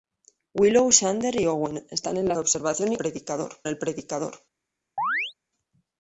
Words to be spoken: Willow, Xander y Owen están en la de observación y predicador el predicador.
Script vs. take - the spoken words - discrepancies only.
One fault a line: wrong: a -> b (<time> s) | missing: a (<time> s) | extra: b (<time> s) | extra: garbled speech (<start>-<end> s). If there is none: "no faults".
no faults